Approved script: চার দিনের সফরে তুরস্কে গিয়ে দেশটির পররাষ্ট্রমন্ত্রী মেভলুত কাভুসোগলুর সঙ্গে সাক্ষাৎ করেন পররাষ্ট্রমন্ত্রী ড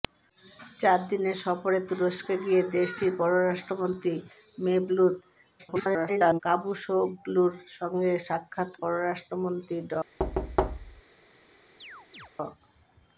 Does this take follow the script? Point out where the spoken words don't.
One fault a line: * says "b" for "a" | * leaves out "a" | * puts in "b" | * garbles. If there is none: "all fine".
* garbles
* leaves out "করেন"